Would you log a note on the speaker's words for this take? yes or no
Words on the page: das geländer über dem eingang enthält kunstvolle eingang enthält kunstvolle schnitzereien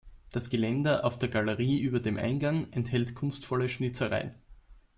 yes